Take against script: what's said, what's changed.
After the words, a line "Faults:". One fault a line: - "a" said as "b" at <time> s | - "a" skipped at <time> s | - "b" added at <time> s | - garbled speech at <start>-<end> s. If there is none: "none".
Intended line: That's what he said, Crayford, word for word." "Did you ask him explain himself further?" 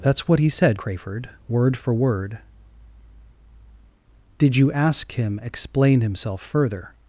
That's what he said, Crayford, word for word." "Did you ask him explain himself further?"
Faults:
none